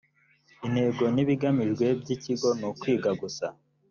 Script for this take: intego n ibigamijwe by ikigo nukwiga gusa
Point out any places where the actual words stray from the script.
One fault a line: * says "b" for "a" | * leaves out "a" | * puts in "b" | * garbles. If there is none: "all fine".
all fine